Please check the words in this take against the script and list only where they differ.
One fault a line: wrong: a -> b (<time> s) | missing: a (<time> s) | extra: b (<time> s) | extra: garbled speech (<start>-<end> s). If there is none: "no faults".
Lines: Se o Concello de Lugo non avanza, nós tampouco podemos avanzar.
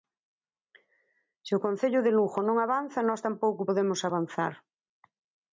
no faults